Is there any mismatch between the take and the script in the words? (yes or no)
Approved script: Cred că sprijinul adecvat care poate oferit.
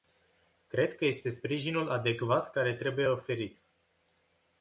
yes